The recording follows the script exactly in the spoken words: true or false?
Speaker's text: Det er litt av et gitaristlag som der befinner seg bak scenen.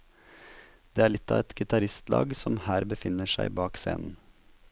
false